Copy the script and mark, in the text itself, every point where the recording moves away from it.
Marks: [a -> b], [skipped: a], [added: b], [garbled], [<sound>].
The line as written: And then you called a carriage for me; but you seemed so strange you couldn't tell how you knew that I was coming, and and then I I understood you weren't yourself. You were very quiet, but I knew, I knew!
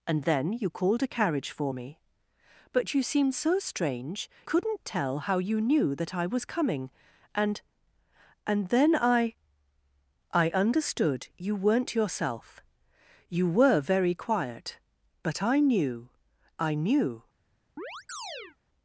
And then you called a carriage for me; but you seemed so strange [skipped: you] couldn't tell how you knew that I was coming, and and then I I understood you weren't yourself. You were very quiet, but I knew, I knew! [chirp]